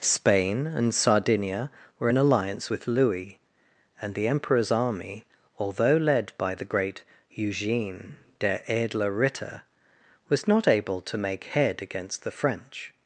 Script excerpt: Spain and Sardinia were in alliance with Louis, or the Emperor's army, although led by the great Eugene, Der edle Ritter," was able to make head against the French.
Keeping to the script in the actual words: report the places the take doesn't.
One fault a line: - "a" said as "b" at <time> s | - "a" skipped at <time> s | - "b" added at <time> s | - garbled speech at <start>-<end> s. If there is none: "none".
- "or" said as "and" at 4.0 s
- "not" added at 10.5 s